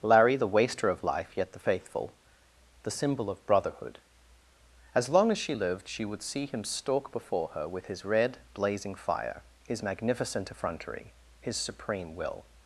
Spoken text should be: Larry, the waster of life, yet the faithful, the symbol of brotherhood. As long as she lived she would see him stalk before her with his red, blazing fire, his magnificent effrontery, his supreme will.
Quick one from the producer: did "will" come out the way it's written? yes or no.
yes